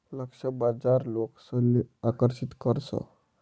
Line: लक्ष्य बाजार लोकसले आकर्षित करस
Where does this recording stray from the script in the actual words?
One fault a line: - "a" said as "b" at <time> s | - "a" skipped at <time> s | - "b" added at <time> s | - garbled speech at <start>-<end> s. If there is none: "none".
none